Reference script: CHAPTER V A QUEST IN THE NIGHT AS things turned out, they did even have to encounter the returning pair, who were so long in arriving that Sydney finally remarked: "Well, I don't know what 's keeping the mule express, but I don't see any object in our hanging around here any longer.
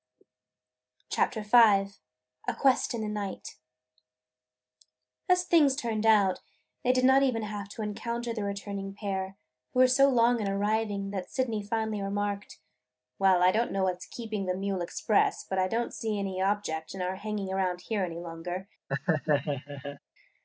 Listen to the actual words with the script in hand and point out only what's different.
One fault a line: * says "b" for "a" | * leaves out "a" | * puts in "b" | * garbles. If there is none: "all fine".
* puts in "not"